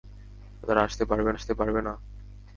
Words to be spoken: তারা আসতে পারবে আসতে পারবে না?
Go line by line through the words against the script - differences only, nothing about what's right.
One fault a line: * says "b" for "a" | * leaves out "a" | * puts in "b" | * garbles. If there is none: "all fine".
all fine